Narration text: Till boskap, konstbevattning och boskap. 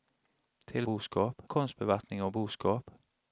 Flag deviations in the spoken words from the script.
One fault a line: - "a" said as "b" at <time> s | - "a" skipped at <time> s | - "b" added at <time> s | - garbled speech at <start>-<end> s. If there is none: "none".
none